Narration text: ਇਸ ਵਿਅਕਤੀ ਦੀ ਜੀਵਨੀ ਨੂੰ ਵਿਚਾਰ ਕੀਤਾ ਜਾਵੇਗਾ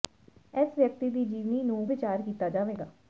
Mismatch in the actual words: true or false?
false